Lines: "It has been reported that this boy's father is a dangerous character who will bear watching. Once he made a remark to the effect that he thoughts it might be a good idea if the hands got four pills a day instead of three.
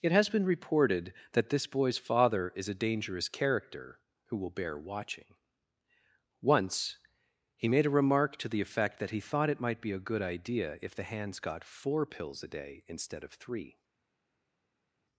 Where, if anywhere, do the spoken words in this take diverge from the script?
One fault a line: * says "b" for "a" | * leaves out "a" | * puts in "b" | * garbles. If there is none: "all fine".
* says "thought" for "thoughts"